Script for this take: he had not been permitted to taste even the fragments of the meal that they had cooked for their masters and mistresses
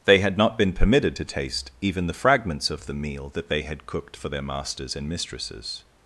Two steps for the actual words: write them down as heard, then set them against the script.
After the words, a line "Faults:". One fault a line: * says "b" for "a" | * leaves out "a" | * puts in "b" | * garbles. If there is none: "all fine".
they had not been permitted to taste even the fragments of the meal that they had cooked for their masters and mistresses
Faults:
* says "they" for "he"